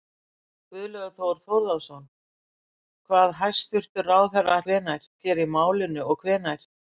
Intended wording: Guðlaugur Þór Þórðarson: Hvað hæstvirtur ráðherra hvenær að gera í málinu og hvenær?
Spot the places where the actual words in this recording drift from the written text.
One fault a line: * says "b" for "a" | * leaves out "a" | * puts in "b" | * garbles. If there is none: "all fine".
all fine